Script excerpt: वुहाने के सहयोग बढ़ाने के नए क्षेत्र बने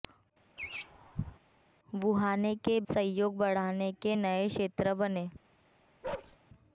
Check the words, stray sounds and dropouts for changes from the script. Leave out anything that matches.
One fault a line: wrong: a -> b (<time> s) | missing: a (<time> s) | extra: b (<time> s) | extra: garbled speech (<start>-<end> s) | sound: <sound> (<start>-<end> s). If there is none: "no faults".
sound: laugh (0.6-1.4 s)
sound: bark (6.0-6.4 s)